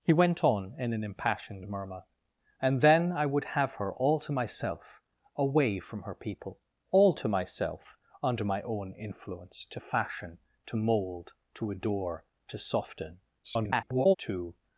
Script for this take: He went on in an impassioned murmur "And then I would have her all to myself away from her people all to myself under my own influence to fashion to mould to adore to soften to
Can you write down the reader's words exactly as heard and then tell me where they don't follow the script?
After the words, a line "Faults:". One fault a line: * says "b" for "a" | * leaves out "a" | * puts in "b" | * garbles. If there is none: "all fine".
He went on in an impassioned murmur "And then I would have her all to myself away from her people all to myself under my own influence to fashion to mould to adore to soften [garbled] to
Faults:
* garbles